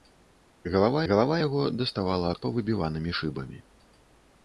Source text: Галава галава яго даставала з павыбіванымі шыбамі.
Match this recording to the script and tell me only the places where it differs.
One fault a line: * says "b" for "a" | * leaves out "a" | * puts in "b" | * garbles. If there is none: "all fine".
all fine